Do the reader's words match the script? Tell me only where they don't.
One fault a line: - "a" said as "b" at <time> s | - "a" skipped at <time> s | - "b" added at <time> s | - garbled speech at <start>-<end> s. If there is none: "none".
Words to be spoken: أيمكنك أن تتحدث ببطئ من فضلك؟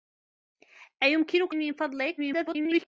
- "أن تتحدث ببطئ" skipped at 1.6 s
- garbled speech at 2.2-2.8 s